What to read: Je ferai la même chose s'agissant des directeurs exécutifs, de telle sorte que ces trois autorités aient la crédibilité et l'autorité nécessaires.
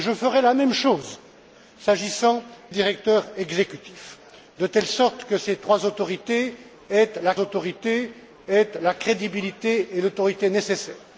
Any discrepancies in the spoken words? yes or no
yes